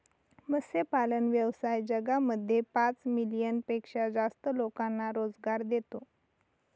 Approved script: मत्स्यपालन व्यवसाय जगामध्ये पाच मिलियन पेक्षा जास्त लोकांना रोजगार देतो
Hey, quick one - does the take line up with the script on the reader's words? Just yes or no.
yes